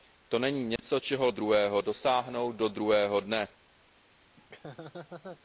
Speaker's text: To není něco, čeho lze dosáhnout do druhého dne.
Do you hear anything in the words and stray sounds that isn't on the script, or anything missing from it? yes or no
yes